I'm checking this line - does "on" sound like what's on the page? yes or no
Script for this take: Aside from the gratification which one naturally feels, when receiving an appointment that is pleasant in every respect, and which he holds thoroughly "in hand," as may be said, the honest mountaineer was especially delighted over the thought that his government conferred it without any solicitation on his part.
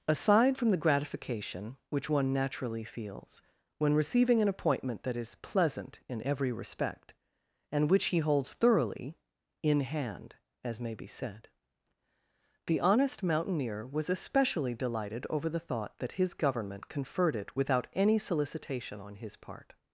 yes